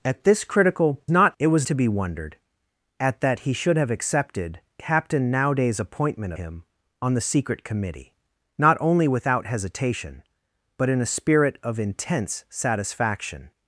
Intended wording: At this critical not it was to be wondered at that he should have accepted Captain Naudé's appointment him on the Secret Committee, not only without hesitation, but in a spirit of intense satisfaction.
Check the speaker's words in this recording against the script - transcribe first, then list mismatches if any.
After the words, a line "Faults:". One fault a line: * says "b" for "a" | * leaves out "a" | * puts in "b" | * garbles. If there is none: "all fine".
At this critical not it was to be wondered at that he should have accepted Captain Naudé's appointment him on the Secret Committee, not only without hesitation, but in a spirit of intense satisfaction.
Faults:
all fine